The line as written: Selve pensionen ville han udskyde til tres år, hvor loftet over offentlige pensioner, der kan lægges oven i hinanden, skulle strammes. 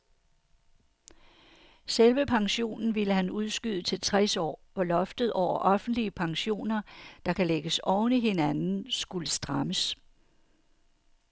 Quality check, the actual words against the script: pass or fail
pass